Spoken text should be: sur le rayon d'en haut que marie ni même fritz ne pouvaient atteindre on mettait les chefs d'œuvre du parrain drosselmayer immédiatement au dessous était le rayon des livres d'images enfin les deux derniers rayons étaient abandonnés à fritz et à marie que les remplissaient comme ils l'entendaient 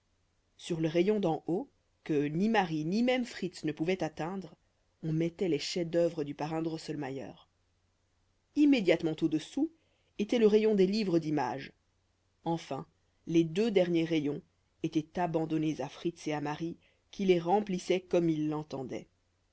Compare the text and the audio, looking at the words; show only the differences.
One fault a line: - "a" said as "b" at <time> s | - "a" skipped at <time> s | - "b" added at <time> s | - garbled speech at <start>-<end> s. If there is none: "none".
- "ni" added at 2.3 s
- "que" said as "qui" at 17.1 s